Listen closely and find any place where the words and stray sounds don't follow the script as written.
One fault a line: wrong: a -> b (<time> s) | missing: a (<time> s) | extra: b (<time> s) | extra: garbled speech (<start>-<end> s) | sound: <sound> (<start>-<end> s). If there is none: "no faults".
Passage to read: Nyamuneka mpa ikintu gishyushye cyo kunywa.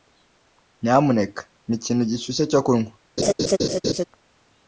sound: laugh (3.2-4.1 s)